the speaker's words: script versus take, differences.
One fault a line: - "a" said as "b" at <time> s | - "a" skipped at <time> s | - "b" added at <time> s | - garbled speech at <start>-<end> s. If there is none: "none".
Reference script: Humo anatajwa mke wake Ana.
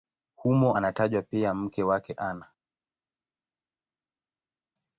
- "pia" added at 1.2 s